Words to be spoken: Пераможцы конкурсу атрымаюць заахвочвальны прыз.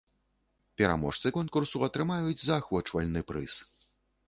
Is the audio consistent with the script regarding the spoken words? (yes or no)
yes